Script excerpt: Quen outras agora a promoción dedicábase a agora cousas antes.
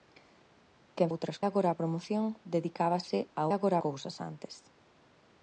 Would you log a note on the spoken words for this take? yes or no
no